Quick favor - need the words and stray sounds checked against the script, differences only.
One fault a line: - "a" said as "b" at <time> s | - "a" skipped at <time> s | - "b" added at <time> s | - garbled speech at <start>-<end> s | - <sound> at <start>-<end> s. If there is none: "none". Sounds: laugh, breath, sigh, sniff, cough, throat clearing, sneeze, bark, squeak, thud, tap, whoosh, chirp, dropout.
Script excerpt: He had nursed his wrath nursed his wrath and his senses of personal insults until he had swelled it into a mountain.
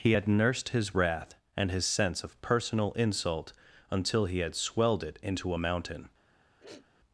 - "nursed his wrath" skipped at 1.3 s
- "senses" said as "sense" at 1.9 s
- "insults" said as "insult" at 2.9 s
- sniff at 6.6-6.9 s